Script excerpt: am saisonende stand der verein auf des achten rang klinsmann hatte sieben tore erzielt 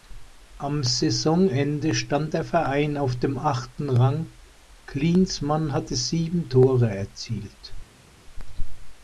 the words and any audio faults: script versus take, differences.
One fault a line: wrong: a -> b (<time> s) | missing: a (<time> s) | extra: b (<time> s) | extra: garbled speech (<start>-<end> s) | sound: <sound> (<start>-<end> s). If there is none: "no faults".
wrong: des -> dem (3.2 s)